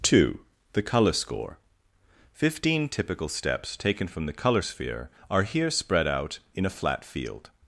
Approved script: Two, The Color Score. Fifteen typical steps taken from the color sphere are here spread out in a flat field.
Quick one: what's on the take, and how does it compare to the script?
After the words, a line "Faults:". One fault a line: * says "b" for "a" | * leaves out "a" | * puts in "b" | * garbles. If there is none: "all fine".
Two, The Color Score. Fifteen typical steps taken from the color sphere are here spread out in a flat field.
Faults:
all fine